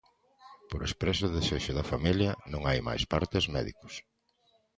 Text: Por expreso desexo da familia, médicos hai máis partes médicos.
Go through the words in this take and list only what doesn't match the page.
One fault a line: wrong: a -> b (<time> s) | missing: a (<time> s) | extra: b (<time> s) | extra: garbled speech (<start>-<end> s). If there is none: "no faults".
wrong: médicos -> non (2.5 s)